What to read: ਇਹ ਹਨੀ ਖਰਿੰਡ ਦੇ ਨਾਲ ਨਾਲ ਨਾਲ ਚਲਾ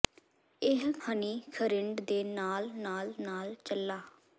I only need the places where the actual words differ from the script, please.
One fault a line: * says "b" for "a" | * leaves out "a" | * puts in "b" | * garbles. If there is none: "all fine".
all fine